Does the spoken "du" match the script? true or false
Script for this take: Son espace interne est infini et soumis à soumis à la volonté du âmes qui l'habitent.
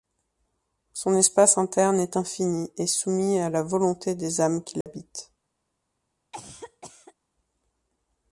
false